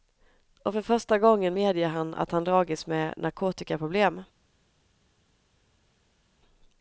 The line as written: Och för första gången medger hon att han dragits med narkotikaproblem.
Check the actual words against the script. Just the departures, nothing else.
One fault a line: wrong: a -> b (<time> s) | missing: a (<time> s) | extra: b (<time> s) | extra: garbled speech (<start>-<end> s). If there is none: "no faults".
wrong: hon -> han (1.9 s)